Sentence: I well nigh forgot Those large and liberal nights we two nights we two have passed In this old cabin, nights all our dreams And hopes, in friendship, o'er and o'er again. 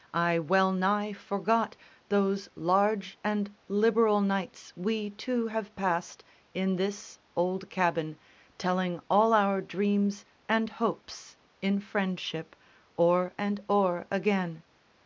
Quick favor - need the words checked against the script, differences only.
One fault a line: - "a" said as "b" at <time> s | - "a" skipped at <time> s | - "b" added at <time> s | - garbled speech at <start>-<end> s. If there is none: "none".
- "nights we two" skipped at 5.5 s
- "nights" said as "telling" at 8.6 s